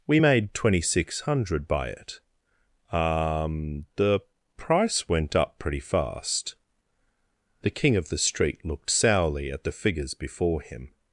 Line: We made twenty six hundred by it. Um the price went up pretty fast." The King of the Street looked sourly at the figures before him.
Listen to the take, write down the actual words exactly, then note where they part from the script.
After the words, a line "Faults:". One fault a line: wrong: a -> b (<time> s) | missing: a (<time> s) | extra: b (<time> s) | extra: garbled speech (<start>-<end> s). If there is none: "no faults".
We made twenty six hundred by it. Um the price went up pretty fast." The King of the Street looked sourly at the figures before him.
Faults:
no faults